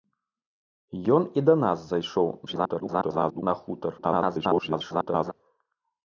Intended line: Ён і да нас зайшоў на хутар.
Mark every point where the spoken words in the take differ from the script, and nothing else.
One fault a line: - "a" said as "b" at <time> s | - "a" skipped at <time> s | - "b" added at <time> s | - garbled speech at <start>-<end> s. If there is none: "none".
- garbled speech at 2.5-3.4 s
- garbled speech at 4.0-5.3 s